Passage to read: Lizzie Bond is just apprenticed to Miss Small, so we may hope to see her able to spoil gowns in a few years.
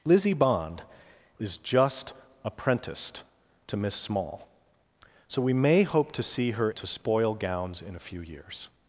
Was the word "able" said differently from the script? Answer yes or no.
yes